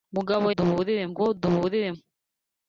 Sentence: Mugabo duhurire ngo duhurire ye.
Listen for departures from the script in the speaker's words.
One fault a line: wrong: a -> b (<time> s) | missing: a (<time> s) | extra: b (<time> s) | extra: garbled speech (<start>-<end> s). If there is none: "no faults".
no faults